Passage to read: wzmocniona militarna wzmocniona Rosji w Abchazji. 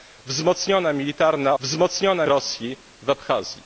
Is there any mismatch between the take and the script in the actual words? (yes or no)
no